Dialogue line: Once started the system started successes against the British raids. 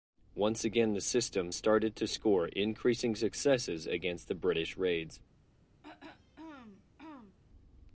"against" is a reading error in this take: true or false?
false